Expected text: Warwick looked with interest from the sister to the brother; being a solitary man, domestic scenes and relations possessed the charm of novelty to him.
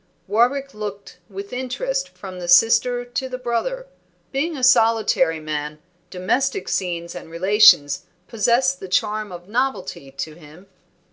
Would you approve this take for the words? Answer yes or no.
yes